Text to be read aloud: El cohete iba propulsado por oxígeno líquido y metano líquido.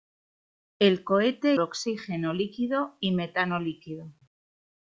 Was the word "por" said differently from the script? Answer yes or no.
yes